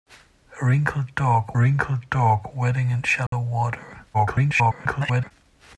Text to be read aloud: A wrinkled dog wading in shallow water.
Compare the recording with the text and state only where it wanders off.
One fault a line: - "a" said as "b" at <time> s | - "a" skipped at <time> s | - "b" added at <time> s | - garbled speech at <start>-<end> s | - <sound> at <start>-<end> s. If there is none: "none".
- "wrinkled dog" added at 1.6 s
- dropout at 3.3-3.3 s
- garbled speech at 4.1-5.3 s